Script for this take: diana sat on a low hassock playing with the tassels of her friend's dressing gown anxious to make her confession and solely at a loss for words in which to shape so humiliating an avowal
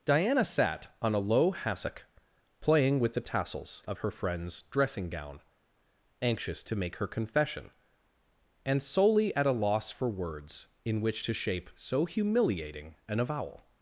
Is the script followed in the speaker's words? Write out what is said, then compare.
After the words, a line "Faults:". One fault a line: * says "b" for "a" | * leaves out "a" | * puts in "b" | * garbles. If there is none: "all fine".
diana sat on a low hassock playing with the tassels of her friend's dressing gown anxious to make her confession and solely at a loss for words in which to shape so humiliating an avowal
Faults:
all fine